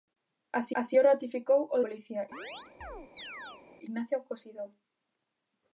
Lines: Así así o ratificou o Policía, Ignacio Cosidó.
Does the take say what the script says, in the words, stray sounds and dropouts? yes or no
no